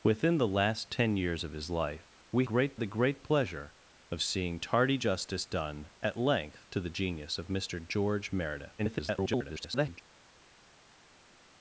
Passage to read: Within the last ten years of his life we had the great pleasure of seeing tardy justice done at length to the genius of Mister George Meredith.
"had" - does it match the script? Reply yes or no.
no